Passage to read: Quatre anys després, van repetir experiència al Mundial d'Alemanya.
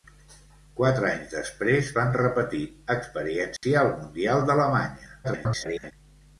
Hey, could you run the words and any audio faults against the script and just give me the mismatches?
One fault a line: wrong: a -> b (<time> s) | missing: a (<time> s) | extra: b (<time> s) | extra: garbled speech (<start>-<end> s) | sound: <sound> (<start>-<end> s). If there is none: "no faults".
sound: dropout (3.6-3.6 s)
extra: garbled speech (5.2-5.9 s)